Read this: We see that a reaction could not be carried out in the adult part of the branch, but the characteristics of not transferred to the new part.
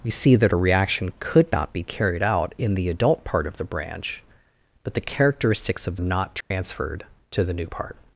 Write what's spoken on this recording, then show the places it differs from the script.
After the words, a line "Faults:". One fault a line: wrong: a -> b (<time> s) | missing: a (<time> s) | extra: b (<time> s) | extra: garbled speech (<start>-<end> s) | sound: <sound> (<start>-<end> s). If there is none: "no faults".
We see that a reaction could not be carried out in the adult part of the branch, but the characteristics of not transferred to the new part.
Faults:
sound: dropout (6.4-6.5 s)